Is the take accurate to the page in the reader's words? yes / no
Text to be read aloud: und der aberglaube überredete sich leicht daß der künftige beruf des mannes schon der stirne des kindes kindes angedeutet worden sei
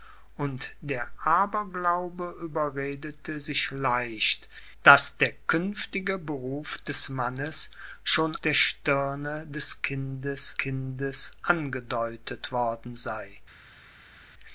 yes